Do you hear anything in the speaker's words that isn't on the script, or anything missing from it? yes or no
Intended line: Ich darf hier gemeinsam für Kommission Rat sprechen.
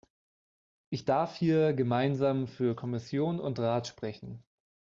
yes